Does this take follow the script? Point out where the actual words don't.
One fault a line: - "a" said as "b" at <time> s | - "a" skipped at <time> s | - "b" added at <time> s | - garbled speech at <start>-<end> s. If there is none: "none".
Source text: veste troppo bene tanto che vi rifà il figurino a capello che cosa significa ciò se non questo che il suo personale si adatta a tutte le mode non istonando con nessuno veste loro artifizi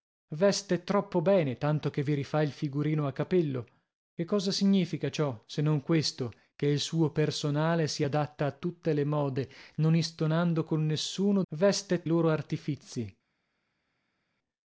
none